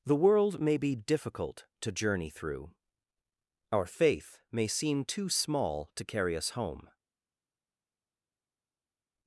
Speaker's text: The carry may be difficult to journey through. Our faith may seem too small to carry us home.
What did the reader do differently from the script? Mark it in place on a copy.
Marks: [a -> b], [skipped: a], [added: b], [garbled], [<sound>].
The [carry -> world] may be difficult to journey through. Our faith may seem too small to carry us home.